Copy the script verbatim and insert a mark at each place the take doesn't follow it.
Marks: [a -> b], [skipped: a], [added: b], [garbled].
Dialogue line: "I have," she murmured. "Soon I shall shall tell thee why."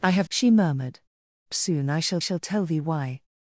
"I have," she murmured. "Soon I shall shall tell thee why."